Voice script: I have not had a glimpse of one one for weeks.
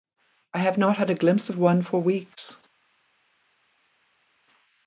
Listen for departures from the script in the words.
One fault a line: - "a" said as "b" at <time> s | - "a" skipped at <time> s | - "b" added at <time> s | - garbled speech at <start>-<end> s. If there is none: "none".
- "one" skipped at 1.8 s